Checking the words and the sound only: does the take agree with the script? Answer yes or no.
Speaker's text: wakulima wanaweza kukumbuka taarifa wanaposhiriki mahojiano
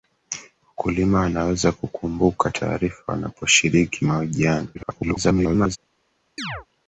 no